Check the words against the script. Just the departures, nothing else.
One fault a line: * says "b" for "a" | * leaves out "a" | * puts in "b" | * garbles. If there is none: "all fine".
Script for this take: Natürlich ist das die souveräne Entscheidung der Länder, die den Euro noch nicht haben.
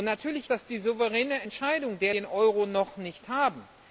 * leaves out "ist"
* leaves out "Länder die"